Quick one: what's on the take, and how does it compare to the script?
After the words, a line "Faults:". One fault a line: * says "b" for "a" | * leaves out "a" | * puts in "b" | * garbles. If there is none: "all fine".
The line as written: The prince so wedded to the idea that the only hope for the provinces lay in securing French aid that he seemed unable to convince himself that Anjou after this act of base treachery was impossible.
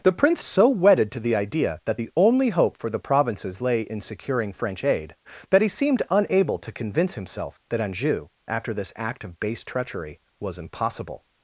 The prince so wedded to the idea that the only hope for the provinces lay in securing French aid that he seemed unable to convince himself that Anjou after this act of base treachery was impossible.
Faults:
all fine